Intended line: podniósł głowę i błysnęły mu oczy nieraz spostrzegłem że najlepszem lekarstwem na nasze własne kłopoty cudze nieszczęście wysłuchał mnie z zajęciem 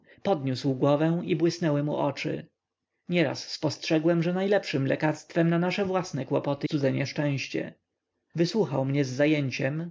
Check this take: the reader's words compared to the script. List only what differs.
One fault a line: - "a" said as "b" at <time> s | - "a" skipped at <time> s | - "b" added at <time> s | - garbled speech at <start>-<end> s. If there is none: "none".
none